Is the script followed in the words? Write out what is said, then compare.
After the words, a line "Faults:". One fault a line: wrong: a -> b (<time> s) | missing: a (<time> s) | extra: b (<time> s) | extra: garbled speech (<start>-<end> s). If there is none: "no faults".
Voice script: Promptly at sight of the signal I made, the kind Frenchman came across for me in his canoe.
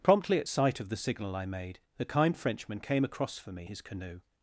Promptly at sight of the signal I made, the kind Frenchman came across for me his canoe.
Faults:
missing: in (3.7 s)